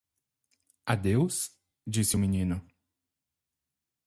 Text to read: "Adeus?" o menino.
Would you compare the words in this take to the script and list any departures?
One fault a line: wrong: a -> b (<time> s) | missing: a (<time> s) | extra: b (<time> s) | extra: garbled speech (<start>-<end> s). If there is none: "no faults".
extra: disse (1.8 s)